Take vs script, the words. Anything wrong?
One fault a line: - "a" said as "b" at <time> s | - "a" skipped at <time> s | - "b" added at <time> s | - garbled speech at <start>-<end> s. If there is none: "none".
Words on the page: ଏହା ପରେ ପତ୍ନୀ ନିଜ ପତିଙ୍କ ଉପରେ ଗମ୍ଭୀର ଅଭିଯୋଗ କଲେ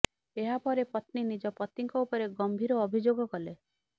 none